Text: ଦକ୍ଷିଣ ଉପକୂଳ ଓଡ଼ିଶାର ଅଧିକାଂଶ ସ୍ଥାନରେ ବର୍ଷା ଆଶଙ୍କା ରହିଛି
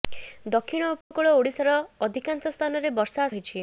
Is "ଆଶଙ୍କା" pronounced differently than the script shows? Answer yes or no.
yes